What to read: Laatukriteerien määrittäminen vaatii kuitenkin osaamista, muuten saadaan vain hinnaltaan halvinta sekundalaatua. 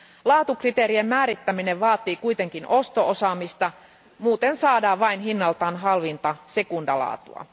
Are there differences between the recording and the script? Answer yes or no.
yes